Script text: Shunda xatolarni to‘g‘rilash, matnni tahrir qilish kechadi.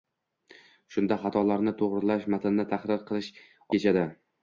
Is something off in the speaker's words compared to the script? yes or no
no